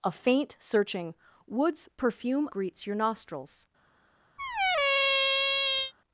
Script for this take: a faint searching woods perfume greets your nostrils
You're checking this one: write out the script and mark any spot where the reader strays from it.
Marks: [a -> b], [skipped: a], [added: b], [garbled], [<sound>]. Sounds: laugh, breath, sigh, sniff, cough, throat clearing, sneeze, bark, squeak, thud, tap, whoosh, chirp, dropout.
a faint searching woods perfume greets your nostrils [squeak]